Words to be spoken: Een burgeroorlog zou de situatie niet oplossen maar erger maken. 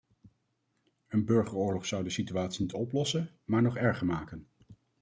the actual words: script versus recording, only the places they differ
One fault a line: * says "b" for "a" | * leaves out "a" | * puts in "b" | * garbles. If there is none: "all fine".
* puts in "nog"